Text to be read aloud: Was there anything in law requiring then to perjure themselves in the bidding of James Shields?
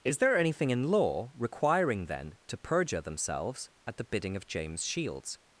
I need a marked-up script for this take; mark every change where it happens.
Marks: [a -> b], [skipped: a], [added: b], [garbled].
[Was -> Is] there anything in law requiring then to perjure themselves [in -> at] the bidding of James Shields?